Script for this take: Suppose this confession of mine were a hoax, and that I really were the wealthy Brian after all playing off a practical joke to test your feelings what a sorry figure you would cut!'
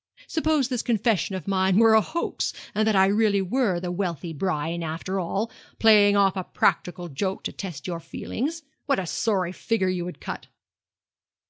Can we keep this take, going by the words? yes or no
yes